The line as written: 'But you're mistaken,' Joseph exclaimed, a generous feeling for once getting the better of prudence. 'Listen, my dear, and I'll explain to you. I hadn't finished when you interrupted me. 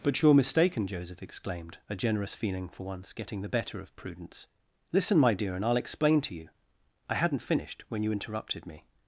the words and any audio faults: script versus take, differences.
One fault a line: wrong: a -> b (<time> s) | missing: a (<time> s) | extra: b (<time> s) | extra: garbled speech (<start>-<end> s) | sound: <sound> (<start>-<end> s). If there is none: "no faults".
no faults